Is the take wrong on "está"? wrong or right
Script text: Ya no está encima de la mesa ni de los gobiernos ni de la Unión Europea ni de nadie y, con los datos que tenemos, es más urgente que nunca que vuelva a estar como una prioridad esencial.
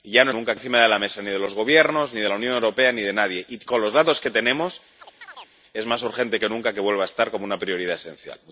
wrong